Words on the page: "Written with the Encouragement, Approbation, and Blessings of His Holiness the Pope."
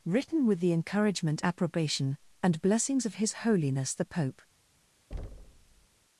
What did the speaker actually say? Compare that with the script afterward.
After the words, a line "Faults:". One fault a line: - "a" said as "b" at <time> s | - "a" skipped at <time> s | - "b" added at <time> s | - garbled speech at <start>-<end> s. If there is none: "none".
"Written with the Encouragement, Approbation, and Blessings of His Holiness the Pope."
Faults:
none